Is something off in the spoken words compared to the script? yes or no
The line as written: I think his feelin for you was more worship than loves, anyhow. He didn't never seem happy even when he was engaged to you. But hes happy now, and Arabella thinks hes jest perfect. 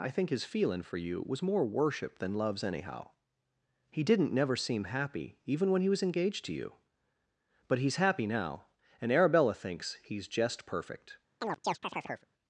no